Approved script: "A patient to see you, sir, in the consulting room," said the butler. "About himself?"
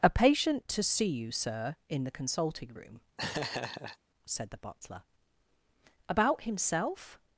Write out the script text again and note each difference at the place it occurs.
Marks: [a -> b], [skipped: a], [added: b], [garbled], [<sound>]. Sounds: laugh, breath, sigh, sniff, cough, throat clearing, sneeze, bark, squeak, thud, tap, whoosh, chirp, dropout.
"A patient to see you, sir, in the consulting room," [laugh] said the butler. "About himself?"